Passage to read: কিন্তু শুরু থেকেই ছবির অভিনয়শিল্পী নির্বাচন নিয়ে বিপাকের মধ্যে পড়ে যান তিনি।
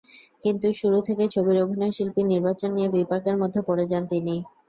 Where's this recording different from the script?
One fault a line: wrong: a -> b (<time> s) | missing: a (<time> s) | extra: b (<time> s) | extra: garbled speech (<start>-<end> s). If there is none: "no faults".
no faults